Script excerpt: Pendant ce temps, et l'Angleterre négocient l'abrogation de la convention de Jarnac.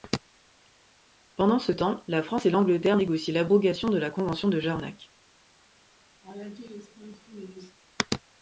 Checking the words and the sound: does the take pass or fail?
fail